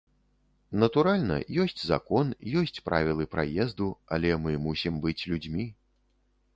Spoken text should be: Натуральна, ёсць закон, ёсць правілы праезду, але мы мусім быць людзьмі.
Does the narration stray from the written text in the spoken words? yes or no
no